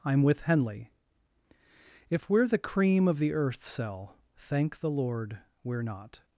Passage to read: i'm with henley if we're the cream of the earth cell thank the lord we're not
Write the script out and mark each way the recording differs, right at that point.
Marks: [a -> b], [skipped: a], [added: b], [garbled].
i'm with henley if we're the cream of the earth cell thank the lord we're not